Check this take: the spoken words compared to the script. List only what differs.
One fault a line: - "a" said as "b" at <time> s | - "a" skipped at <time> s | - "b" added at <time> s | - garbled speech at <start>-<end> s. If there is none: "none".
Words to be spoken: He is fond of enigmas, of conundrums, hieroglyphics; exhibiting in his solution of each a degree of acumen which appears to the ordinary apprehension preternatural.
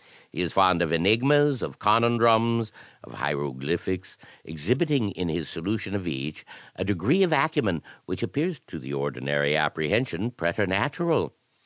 - "of" added at 3.0 s